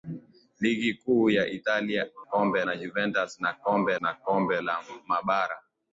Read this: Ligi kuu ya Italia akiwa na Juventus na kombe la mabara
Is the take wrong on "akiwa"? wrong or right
wrong